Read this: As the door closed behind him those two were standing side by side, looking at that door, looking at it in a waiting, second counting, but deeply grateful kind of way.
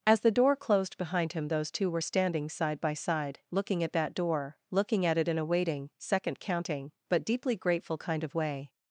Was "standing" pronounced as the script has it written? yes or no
yes